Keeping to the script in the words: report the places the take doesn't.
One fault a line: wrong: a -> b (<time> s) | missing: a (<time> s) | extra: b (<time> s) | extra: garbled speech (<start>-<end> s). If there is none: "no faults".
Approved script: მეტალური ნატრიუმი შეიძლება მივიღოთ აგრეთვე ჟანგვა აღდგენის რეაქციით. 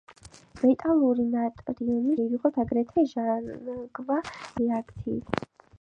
missing: შეიძლება (2.1 s)
missing: აღდგენის (4.2 s)